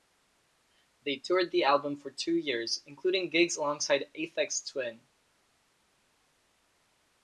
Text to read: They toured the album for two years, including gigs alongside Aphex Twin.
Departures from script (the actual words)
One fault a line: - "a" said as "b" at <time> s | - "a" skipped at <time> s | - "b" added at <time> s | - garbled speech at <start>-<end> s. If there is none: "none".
none